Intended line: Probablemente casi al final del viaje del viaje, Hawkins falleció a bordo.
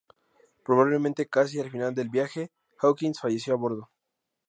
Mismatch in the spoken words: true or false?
true